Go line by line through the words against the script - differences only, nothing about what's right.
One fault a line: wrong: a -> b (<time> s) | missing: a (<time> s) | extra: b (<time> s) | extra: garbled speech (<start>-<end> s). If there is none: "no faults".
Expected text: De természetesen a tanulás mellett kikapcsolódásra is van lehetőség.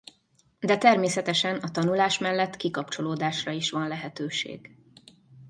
no faults